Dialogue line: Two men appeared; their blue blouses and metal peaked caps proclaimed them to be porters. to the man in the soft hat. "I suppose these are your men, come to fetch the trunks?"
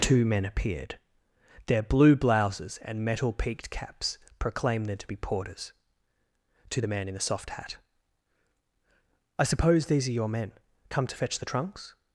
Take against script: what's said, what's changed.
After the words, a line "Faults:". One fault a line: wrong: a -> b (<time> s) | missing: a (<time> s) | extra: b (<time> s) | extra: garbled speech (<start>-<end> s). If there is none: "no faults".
Two men appeared; their blue blouses and metal peaked caps proclaimed them to be porters. to the man in the soft hat. "I suppose these are your men, come to fetch the trunks?"
Faults:
no faults